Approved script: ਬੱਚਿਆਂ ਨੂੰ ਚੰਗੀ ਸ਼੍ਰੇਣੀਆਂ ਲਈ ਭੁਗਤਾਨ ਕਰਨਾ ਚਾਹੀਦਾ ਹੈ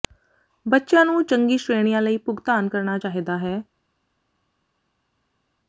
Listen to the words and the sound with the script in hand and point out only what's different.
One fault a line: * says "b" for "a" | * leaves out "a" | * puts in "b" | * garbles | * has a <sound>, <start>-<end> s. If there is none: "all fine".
all fine